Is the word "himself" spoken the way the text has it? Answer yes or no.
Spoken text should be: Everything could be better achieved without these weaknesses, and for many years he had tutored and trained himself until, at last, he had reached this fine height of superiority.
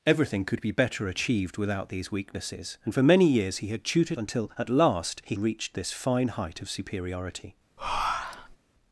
no